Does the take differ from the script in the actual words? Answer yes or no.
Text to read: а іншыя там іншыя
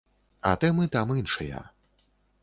yes